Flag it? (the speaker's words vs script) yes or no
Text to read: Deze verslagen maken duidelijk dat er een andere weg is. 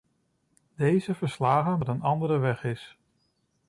yes